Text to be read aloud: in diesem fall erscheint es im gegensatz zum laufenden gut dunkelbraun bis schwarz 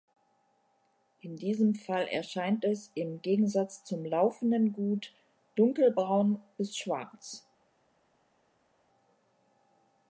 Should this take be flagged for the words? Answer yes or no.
no